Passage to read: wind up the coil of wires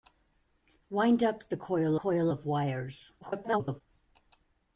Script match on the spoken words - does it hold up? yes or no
no